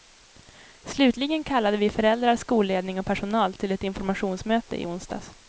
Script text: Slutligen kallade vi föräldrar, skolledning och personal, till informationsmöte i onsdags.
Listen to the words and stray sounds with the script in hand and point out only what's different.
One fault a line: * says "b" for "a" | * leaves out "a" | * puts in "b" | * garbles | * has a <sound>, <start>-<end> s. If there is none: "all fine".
* puts in "ett"